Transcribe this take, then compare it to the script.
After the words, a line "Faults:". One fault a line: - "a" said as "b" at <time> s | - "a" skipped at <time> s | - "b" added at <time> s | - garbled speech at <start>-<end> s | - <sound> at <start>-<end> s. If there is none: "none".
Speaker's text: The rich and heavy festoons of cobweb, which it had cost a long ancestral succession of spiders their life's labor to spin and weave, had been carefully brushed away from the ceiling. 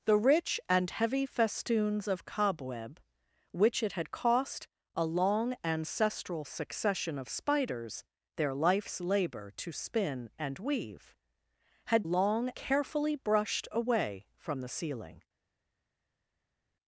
The rich and heavy festoons of cobweb, which it had cost a long ancestral succession of spiders their life's labor to spin and weave, had long carefully brushed away from the ceiling.
Faults:
- "been" said as "long" at 12.0 s